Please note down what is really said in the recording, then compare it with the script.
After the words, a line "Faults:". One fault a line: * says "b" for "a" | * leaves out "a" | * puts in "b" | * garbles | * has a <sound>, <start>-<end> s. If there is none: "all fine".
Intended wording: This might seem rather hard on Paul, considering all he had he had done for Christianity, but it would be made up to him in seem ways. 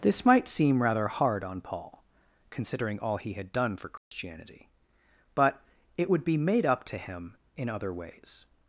This might seem rather hard on Paul, considering all he had done for Christianity, but it would be made up to him in other ways.
Faults:
* leaves out "he had"
* has a dropout, 4.0-4.1 s
* says "other" for "seem"